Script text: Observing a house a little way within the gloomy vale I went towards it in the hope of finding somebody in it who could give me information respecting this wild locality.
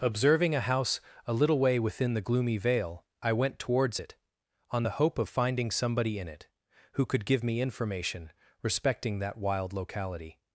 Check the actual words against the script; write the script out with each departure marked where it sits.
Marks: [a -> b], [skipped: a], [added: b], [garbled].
Observing a house a little way within the gloomy vale I went towards it [in -> on] the hope of finding somebody in it who could give me information respecting [this -> that] wild locality.